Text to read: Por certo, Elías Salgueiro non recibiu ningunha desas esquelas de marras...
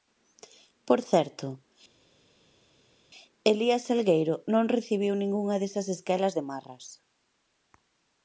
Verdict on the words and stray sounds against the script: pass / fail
pass